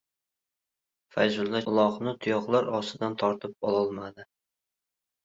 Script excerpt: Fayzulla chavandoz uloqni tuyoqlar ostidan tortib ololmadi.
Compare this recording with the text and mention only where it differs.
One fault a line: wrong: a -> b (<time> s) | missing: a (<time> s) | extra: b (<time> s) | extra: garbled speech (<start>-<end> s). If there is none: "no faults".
missing: chavandoz (1.6 s)